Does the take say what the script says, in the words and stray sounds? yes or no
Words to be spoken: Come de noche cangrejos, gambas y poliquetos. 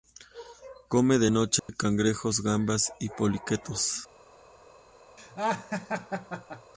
no